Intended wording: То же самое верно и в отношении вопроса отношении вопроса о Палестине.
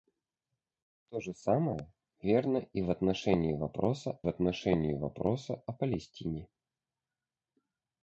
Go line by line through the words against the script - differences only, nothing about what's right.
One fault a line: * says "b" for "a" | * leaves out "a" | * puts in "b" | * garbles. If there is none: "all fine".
all fine